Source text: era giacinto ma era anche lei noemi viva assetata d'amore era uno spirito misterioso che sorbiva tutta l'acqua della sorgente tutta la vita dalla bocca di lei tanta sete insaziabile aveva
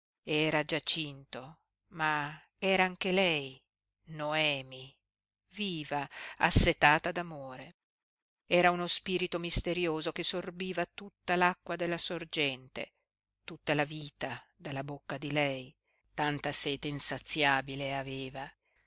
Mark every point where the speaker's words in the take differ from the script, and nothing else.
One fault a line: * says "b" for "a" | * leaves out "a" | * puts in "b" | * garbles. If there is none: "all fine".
all fine